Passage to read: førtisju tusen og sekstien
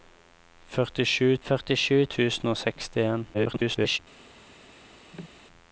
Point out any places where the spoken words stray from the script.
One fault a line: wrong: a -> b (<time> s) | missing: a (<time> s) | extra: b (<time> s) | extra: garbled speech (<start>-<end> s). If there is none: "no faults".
extra: førtisju (1.5 s)
extra: garbled speech (3.3-4.0 s)